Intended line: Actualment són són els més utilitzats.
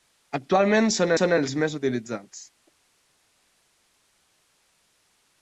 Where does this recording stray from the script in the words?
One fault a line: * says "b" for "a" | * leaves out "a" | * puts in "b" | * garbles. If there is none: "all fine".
all fine